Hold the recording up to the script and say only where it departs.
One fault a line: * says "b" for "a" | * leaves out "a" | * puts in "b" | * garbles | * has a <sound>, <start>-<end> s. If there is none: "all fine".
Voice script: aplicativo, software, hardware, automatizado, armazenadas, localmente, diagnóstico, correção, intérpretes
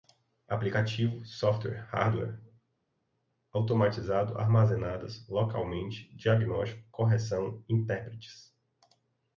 all fine